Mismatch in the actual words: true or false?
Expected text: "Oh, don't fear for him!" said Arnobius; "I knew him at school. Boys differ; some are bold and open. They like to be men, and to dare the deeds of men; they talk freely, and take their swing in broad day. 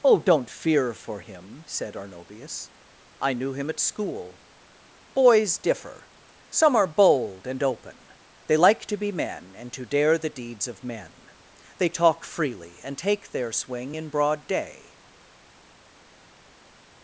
false